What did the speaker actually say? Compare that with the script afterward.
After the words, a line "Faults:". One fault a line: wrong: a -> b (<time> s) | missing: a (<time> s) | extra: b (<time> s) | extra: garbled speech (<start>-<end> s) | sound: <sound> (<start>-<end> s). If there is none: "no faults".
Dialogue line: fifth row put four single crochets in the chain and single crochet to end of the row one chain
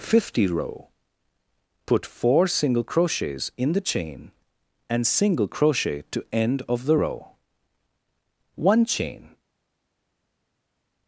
fifty row put four single crochets in the chain and single crochet to end of the row one chain
Faults:
wrong: fifth -> fifty (0.0 s)